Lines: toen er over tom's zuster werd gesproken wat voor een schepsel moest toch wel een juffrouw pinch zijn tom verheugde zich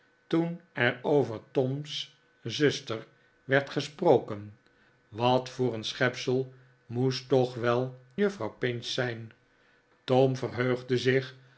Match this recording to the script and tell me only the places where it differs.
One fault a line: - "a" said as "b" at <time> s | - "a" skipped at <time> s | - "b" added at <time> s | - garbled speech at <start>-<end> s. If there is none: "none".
- "een" skipped at 8.0 s